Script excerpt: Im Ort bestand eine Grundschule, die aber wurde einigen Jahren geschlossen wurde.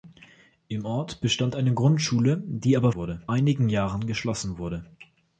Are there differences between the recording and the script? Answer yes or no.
no